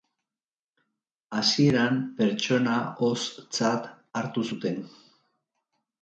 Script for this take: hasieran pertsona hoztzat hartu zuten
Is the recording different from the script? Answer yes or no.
no